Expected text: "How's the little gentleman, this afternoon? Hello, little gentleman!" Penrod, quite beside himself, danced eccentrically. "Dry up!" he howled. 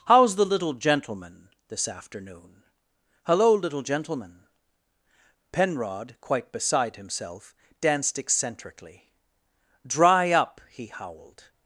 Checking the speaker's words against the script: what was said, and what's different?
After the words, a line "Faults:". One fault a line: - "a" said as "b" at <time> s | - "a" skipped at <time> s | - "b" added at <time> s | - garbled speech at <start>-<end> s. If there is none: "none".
"How's the little gentleman, this afternoon? Hello, little gentleman!" Penrod, quite beside himself, danced eccentrically. "Dry up!" he howled.
Faults:
none